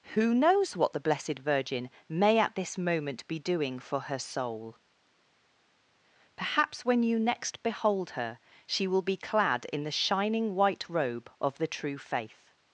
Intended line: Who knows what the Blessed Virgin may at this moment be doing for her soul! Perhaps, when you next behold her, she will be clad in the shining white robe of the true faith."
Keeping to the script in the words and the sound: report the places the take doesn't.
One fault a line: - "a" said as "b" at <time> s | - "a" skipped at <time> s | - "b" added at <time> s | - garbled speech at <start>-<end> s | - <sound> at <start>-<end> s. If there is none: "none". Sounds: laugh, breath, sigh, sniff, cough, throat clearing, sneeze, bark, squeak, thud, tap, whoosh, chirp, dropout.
none